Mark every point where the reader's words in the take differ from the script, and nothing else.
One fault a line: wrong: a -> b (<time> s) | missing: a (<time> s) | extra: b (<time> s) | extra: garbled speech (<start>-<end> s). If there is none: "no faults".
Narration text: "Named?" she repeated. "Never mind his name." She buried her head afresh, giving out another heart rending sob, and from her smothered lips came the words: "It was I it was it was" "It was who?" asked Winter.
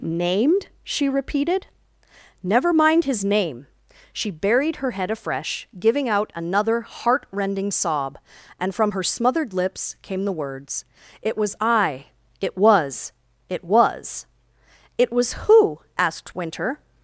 no faults